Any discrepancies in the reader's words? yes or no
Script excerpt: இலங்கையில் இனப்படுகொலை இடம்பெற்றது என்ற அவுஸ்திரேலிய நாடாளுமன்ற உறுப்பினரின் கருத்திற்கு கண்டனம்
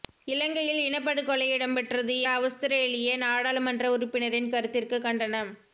yes